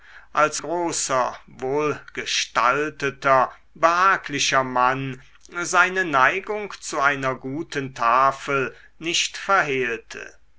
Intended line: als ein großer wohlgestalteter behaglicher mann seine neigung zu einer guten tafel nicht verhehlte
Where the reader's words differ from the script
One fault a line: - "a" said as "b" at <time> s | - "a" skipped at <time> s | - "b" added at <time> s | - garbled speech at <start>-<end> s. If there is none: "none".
- "ein" skipped at 0.6 s